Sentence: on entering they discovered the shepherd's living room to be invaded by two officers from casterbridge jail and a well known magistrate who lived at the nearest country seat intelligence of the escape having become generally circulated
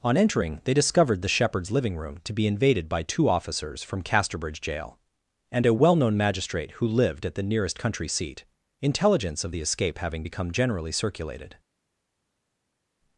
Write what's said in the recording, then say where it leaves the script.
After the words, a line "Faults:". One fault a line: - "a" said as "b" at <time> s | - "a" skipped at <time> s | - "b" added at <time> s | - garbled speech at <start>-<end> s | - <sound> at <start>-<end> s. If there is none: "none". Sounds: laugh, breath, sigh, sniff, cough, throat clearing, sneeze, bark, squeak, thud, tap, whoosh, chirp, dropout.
on entering they discovered the shepherd's living room to be invaded by two officers from casterbridge jail and a well known magistrate who lived at the nearest country seat intelligence of the escape having become generally circulated
Faults:
none